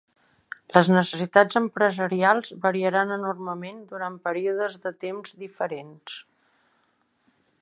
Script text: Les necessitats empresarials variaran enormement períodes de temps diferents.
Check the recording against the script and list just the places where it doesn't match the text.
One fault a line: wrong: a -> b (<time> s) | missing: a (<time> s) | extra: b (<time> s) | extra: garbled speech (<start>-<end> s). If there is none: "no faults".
extra: durant (3.9 s)